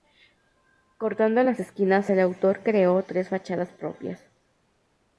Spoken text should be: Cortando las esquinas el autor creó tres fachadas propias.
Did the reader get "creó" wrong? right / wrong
right